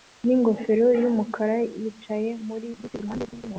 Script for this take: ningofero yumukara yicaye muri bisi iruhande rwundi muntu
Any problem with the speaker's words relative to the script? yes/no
no